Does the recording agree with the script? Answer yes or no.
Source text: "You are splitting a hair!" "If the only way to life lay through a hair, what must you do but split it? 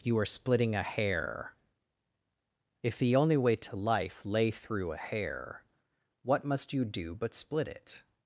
yes